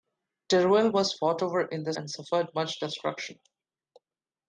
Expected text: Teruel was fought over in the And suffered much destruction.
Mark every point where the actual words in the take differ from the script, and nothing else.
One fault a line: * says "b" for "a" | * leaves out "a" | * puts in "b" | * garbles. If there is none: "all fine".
all fine